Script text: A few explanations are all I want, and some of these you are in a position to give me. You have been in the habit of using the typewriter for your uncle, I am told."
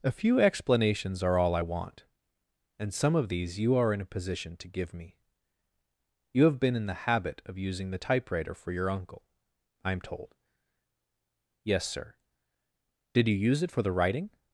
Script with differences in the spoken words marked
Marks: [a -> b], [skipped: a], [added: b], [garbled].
A few explanations are all I want, and some of these you are in a position to give me. You have been in the habit of using the typewriter for your uncle, I am told." [added: Yes sir Did you use it for the writing]